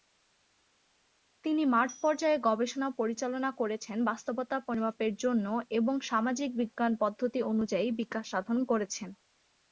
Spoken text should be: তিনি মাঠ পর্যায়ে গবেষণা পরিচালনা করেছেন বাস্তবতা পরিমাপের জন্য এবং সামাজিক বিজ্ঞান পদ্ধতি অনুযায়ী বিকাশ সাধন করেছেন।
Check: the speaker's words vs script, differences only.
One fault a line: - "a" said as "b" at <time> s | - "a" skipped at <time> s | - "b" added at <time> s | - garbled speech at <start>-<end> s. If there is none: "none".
none